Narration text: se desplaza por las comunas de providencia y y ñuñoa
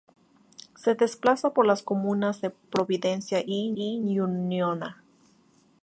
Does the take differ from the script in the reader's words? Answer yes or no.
no